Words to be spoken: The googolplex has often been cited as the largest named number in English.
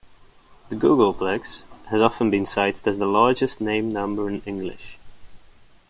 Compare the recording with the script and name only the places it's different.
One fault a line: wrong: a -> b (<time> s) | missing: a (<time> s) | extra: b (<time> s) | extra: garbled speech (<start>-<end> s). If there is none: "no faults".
no faults